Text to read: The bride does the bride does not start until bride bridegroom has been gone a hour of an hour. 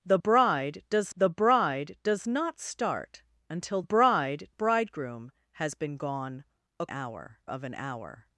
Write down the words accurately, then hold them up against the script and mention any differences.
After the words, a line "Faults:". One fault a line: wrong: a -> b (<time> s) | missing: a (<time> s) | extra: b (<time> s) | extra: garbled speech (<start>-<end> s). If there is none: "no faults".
The bride does the bride does not start until bride bridegroom has been gone a hour of an hour.
Faults:
no faults